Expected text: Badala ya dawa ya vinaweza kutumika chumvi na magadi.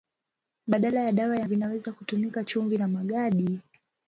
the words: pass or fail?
pass